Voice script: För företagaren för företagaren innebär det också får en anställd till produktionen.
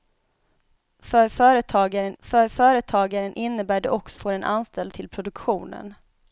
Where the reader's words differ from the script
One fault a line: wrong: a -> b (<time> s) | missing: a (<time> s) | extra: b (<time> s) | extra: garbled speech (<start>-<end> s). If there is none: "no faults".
no faults